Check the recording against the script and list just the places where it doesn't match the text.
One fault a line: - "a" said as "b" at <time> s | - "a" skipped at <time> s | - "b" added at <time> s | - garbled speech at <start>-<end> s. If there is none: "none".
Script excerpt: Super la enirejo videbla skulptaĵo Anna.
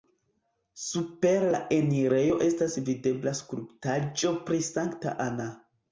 - "estas" added at 2.5 s
- "pri Sankta" added at 4.5 s